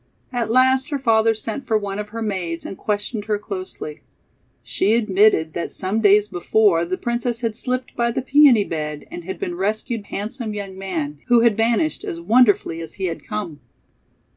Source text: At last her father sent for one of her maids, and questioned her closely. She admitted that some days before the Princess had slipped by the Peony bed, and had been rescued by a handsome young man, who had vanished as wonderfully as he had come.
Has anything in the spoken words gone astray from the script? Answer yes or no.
yes